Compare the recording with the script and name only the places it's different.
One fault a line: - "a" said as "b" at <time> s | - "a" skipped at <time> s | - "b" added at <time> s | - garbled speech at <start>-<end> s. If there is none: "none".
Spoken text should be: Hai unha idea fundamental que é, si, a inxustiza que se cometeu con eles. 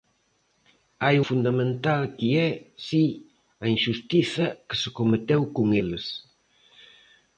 - "unha idea" skipped at 1.1 s